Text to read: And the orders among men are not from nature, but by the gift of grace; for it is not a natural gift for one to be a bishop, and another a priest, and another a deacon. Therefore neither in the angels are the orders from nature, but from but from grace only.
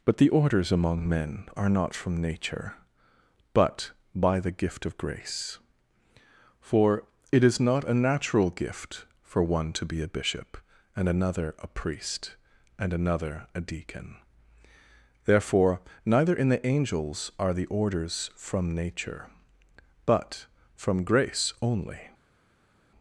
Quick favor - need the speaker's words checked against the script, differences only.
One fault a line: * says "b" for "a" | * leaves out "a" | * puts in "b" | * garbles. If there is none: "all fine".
* says "But" for "And"
* leaves out "but from"